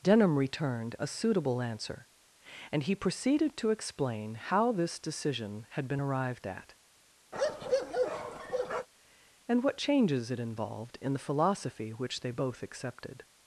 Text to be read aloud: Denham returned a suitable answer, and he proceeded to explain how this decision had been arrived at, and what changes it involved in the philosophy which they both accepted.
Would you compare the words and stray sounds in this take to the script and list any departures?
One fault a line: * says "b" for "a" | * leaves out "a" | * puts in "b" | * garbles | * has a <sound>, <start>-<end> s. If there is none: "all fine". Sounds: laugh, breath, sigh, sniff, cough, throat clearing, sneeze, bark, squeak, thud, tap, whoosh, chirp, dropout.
* has a bark, 7.3-8.9 s